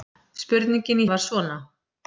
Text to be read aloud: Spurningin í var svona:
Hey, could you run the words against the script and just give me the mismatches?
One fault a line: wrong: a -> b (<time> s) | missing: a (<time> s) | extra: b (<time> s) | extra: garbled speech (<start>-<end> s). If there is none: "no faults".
no faults